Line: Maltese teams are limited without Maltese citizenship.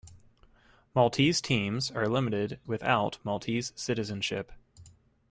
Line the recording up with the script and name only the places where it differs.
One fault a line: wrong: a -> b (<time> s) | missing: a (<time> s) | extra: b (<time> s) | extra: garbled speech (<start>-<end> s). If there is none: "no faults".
no faults